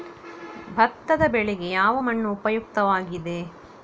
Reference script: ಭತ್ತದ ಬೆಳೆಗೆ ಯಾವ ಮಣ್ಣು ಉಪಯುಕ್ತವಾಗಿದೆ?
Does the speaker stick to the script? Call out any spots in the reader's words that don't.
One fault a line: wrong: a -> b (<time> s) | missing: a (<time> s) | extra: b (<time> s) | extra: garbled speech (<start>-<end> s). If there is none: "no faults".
no faults